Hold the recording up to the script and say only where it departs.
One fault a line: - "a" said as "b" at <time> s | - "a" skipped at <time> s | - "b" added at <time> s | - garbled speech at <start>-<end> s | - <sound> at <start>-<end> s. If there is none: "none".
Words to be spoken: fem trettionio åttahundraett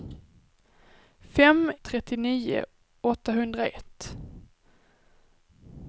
none